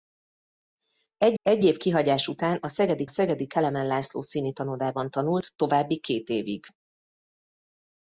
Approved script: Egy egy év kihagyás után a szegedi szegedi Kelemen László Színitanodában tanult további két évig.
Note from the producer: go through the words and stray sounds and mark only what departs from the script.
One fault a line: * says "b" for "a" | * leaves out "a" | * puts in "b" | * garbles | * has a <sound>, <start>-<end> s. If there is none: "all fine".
all fine